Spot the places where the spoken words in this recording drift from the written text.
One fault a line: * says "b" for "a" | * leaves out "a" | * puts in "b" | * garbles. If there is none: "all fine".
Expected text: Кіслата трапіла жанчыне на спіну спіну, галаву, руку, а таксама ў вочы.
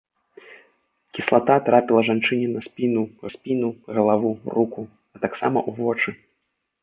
all fine